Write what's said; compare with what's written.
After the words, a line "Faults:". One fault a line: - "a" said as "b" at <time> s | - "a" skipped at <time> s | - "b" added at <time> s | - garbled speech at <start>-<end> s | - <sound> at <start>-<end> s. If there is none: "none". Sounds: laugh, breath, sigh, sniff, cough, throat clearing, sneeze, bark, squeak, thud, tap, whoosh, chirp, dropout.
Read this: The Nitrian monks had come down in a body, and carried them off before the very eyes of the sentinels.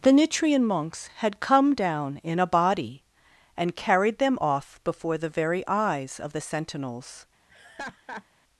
The Nitrian monks had come down in a body, and carried them off before the very eyes of the sentinels.
Faults:
- laugh at 7.5-8.2 s